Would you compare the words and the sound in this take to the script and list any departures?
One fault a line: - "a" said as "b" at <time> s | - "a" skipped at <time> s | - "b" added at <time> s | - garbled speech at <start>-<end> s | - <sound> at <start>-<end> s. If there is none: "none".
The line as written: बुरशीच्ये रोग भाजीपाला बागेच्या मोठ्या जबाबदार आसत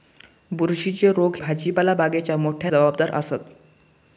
none